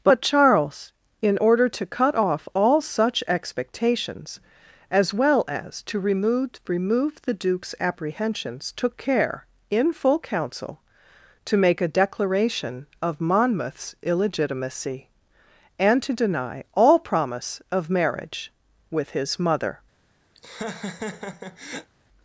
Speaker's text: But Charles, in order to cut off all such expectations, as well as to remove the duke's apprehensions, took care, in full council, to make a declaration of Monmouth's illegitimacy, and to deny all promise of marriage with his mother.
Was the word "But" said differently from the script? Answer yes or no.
no